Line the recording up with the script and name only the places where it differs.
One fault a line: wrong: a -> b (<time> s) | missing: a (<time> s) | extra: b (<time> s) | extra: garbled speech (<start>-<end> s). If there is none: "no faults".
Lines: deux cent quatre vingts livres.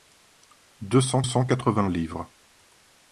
extra: cent (1.2 s)